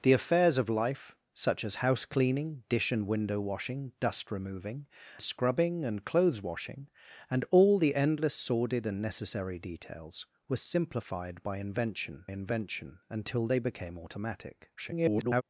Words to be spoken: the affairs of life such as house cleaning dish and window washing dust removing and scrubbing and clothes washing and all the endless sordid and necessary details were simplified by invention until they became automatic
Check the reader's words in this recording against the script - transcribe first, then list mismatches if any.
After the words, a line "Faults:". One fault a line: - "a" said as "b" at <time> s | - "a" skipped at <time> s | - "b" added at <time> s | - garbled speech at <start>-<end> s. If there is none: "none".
the affairs of life such as house cleaning dish and window washing dust removing scrubbing and clothes washing and all the endless sordid and necessary details were simplified by invention invention until they became automatic [garbled]
Faults:
- "and" skipped at 4.9 s
- "invention" added at 12.3 s
- garbled speech at 14.8-15.4 s